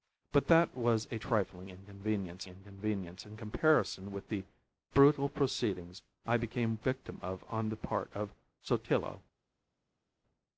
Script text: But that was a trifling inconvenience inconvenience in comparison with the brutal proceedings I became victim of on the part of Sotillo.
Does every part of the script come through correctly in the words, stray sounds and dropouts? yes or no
yes